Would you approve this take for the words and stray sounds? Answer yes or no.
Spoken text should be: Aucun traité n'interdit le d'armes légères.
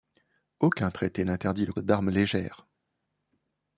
yes